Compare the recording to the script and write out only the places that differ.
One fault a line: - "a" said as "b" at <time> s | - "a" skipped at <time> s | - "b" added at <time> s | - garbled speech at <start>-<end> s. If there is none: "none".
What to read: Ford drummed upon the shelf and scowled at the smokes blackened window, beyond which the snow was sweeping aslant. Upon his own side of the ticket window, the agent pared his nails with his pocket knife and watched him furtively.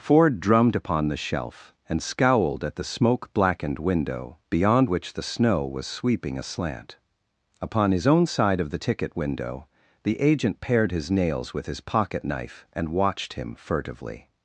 - "smokes" said as "smoke" at 2.8 s